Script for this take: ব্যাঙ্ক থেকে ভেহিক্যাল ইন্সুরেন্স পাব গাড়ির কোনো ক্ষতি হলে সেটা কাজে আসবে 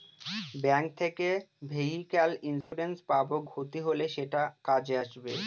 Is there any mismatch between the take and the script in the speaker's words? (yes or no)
yes